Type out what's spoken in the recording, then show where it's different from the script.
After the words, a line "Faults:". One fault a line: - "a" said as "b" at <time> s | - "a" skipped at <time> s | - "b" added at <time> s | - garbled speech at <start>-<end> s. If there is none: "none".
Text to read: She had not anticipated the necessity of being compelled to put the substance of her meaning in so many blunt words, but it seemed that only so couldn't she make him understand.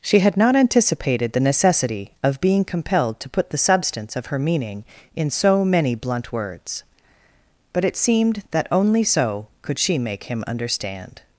She had not anticipated the necessity of being compelled to put the substance of her meaning in so many blunt words, but it seemed that only so could she make him understand.
Faults:
- "couldn't" said as "could" at 9.6 s